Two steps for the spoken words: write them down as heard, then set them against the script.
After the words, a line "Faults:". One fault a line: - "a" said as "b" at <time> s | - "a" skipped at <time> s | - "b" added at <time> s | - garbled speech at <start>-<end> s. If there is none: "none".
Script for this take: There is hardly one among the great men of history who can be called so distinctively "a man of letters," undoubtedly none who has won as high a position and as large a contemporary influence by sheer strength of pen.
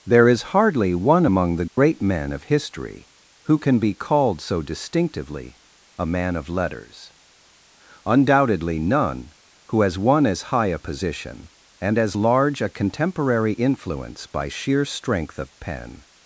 There is hardly one among the great men of history who can be called so distinctively "a man of letters," undoubtedly none who has won as high a position and as large a contemporary influence by sheer strength of pen.
Faults:
none